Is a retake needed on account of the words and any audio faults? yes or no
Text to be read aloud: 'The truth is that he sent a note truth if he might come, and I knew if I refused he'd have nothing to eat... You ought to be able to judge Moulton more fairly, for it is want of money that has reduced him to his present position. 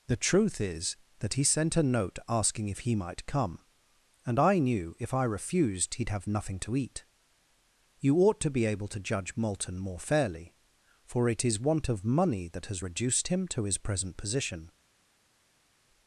yes